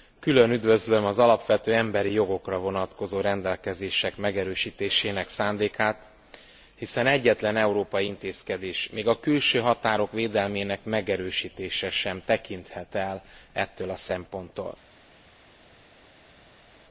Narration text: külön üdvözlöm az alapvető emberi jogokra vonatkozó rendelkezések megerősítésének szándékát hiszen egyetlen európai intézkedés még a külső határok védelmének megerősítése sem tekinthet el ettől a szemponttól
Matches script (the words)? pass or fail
pass